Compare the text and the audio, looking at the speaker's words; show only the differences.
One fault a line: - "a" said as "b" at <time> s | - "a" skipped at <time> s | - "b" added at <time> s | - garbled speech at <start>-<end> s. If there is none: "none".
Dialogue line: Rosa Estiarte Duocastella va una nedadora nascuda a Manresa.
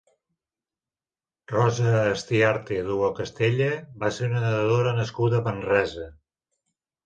- "ser" added at 4.2 s